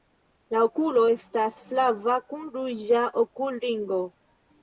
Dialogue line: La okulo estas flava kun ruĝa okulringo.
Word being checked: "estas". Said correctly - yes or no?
yes